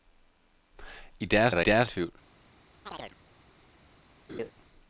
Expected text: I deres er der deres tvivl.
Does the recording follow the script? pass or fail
pass